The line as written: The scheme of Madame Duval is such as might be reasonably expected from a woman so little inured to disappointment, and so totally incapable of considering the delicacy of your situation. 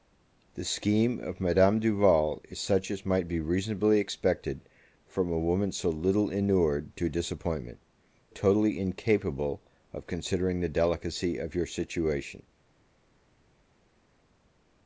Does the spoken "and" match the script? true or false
false